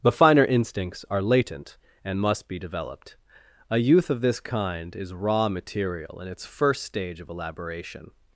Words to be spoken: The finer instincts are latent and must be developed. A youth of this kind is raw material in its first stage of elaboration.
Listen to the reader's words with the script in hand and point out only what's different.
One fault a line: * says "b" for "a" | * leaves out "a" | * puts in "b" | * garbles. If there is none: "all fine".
all fine